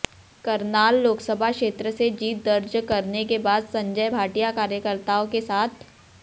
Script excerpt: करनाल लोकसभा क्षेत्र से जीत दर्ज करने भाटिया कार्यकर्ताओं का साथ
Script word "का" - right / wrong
wrong